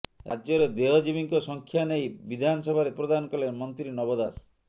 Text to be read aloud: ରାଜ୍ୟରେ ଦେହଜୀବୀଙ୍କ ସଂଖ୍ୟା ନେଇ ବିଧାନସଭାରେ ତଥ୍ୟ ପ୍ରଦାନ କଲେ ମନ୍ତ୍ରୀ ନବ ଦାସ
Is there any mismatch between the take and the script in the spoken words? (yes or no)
yes